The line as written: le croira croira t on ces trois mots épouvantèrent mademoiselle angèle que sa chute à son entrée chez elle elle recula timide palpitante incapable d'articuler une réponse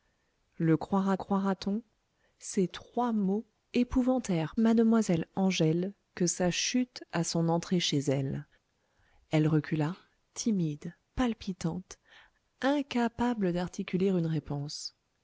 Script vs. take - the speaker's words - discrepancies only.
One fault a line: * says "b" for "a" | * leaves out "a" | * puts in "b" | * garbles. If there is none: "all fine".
all fine